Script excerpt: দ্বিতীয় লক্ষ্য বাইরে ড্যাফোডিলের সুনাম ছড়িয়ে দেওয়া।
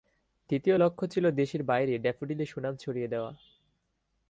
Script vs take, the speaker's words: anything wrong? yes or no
yes